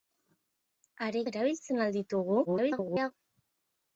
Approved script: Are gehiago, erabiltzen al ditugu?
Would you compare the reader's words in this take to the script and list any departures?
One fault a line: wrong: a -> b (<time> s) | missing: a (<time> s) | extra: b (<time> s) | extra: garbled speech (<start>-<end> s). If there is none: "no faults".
missing: gehiago (1.2 s)
extra: garbled speech (2.5-3.1 s)